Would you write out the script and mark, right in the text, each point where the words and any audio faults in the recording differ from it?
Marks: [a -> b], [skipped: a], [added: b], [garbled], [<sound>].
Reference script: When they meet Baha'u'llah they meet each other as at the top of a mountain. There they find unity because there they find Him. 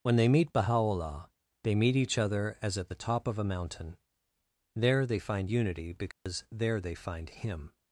When they meet Baha'u'llah they meet each other as at the top of a mountain. There they find unity because [dropout] there they find Him.